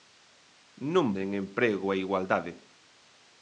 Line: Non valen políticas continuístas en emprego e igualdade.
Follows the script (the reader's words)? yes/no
no